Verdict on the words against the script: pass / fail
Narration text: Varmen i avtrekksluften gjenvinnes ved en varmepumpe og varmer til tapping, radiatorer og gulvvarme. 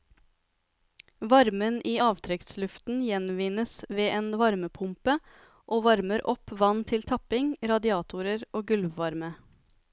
fail